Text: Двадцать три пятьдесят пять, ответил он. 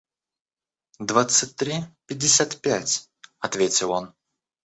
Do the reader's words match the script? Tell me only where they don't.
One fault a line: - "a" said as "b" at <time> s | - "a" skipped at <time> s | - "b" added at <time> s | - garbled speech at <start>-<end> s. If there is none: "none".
none